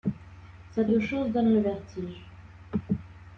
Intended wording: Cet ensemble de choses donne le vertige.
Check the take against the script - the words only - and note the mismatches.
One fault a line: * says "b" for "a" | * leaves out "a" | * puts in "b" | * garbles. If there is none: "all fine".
* leaves out "ensemble"